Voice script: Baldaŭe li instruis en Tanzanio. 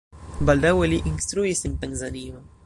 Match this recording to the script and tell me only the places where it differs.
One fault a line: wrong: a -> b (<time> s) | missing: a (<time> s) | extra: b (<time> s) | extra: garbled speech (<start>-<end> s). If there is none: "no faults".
no faults